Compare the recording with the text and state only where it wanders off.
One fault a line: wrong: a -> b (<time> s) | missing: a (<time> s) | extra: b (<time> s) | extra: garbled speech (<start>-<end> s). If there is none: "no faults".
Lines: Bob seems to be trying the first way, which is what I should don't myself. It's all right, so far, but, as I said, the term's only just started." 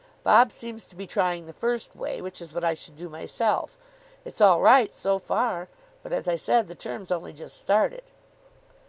wrong: don't -> do (3.0 s)